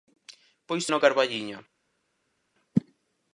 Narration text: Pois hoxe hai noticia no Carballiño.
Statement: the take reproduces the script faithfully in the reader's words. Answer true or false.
false